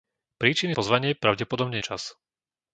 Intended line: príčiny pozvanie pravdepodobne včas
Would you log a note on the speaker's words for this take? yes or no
no